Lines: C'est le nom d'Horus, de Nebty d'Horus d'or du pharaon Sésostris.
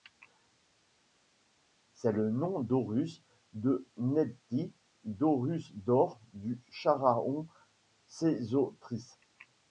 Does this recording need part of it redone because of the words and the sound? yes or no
no